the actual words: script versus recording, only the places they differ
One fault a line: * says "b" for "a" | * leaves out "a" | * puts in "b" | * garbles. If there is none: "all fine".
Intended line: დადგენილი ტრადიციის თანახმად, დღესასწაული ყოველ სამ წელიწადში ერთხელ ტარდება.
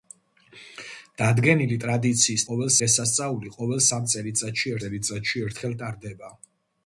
* says "ყოველ" for "თანახმად"
* puts in "წელიწადში"